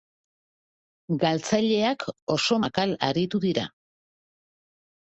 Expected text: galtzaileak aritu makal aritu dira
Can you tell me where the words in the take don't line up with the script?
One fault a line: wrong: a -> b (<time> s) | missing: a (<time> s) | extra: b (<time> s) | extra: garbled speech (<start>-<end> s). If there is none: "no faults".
wrong: aritu -> oso (2.4 s)